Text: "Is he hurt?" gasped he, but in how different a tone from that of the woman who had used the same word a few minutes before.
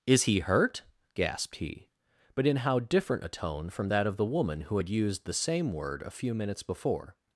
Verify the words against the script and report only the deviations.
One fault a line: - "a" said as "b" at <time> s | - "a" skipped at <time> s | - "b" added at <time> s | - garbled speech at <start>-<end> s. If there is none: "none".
none